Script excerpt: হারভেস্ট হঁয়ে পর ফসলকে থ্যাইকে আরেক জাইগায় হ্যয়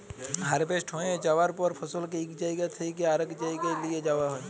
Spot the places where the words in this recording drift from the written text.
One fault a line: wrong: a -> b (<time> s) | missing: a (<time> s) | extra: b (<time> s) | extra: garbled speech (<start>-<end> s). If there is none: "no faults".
extra: যাউয়ার (1.2 s)
extra: ইক জাইগা (2.2 s)
extra: লিঁয়ে যাউয়া (3.8 s)